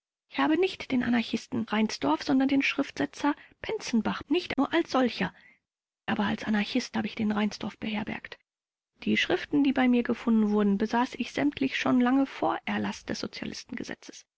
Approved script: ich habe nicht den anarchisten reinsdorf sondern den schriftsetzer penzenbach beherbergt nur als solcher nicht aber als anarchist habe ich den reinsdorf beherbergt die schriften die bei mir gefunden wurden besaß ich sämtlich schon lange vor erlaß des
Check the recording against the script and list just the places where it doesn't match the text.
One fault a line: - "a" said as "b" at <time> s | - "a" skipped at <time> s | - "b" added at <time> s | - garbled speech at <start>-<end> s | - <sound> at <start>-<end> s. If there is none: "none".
- "beherbergt" said as "nicht" at 4.3 s
- "nicht" skipped at 5.3 s